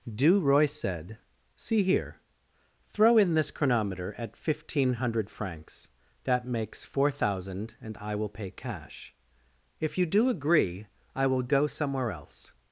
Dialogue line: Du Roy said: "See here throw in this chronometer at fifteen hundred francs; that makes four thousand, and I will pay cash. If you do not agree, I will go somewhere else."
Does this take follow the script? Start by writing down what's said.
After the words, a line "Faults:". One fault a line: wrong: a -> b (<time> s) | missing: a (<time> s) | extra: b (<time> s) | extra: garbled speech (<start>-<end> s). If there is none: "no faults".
Du Roy said: "See here throw in this chronometer at fifteen hundred francs; that makes four thousand, and I will pay cash. If you do agree, I will go somewhere else."
Faults:
missing: not (10.3 s)